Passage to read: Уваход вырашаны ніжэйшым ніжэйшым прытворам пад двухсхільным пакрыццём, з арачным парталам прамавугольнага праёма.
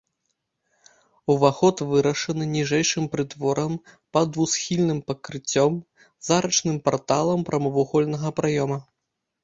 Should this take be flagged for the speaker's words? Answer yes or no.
yes